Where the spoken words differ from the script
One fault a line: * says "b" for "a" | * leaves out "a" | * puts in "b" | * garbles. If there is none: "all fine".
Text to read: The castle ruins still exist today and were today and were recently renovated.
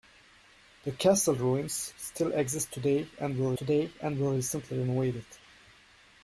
all fine